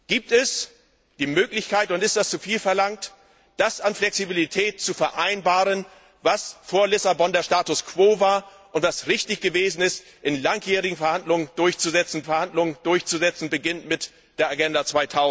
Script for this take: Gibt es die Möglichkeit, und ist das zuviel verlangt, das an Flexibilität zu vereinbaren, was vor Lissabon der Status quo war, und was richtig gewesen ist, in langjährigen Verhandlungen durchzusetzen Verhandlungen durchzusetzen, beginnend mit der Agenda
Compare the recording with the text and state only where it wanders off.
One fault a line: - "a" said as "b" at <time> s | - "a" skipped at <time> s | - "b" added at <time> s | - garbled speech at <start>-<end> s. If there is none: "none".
none